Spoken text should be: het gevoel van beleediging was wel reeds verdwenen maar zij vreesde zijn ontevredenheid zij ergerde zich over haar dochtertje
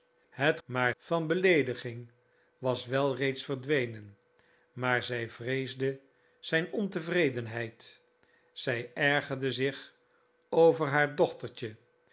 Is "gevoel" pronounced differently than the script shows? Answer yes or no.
yes